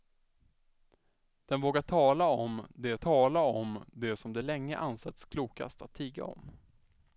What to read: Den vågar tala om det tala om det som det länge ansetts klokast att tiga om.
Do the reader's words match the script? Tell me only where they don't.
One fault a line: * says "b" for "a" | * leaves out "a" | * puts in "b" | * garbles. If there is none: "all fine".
all fine